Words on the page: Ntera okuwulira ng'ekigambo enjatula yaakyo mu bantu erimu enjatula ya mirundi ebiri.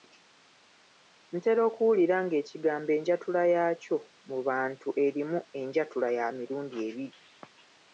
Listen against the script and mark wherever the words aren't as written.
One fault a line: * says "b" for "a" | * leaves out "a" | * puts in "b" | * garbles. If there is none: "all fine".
all fine